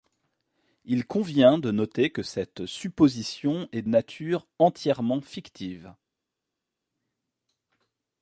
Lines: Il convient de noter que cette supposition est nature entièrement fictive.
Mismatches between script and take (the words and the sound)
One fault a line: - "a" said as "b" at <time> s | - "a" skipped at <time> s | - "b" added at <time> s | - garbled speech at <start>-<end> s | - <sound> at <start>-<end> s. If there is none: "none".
none